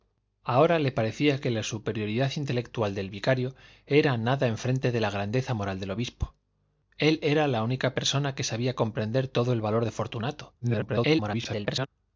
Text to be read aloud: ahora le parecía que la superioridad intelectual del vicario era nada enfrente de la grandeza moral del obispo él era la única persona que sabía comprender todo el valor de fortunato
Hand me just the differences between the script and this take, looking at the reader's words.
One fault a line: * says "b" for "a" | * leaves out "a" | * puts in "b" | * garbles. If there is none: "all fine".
* garbles